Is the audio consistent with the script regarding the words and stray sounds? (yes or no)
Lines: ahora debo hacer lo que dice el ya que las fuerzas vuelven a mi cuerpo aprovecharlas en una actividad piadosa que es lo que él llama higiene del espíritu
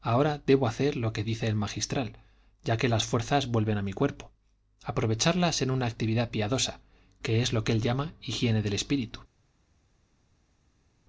no